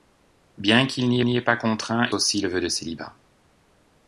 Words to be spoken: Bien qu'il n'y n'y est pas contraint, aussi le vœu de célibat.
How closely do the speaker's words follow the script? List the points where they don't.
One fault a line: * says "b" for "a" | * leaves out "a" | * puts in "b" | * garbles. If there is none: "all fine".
all fine